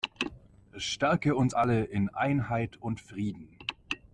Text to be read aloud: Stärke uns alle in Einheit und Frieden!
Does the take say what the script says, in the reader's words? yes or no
yes